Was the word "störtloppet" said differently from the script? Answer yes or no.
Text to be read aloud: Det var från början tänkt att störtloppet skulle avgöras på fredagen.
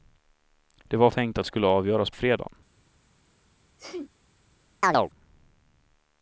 yes